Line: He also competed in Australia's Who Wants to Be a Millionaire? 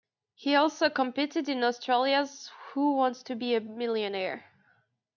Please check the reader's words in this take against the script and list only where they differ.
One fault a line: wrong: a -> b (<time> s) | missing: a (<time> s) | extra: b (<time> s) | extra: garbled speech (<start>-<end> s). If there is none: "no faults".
no faults